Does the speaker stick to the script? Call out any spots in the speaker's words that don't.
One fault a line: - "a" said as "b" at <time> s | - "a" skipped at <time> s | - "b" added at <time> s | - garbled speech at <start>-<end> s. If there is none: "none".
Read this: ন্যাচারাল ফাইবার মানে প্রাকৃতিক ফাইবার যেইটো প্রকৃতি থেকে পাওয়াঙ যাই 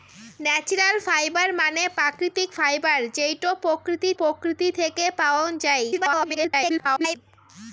- "প্রকৃতি" added at 4.2 s
- garbled speech at 5.9-7.2 s